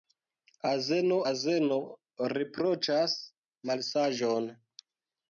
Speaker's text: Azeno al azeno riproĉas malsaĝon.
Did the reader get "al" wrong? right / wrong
wrong